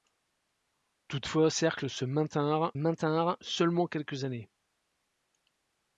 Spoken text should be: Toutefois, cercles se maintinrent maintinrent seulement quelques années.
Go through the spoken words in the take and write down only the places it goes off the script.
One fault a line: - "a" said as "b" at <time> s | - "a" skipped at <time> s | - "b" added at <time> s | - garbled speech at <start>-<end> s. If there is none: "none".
none